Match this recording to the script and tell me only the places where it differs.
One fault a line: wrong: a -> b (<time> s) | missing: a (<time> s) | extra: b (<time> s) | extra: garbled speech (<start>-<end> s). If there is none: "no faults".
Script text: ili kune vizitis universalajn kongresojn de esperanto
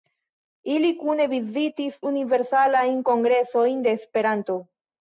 no faults